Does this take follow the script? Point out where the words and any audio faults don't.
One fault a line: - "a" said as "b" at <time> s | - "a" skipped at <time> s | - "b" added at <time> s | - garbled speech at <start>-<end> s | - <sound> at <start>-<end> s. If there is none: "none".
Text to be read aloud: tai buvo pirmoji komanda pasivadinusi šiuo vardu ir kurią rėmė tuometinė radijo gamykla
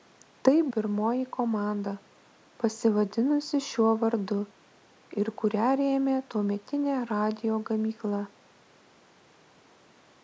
- "buvo" skipped at 0.6 s